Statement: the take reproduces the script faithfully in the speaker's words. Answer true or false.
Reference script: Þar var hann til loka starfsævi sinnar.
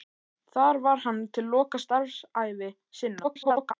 false